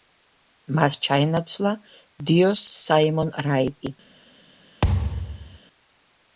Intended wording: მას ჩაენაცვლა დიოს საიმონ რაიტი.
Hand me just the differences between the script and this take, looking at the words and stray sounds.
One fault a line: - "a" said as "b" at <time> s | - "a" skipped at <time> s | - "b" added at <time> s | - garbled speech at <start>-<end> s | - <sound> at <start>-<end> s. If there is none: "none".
- thud at 4.8-5.6 s